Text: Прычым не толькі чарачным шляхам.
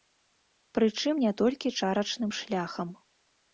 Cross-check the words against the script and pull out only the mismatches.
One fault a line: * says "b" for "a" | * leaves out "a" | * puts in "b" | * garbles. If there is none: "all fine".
all fine